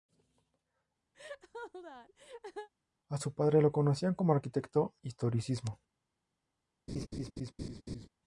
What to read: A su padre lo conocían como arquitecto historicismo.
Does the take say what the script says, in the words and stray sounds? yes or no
no